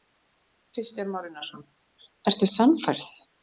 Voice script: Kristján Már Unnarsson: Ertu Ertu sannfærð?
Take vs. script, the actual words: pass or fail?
fail